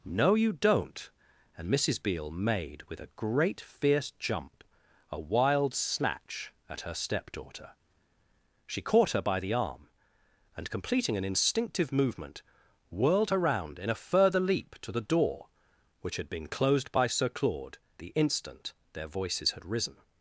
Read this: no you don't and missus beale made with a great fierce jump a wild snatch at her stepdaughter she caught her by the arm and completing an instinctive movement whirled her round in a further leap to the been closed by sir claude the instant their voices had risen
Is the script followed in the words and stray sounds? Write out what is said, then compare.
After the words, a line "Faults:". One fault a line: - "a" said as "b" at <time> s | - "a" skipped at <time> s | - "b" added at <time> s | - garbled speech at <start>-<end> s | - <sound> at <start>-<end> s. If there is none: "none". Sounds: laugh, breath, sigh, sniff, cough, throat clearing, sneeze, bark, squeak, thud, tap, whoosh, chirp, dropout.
no you don't and missus beale made with a great fierce jump a wild snatch at her stepdaughter she caught her by the arm and completing an instinctive movement whirled her round in a further leap to the door which had been closed by sir claude the instant their voices had risen
Faults:
- "door which had" added at 15.0 s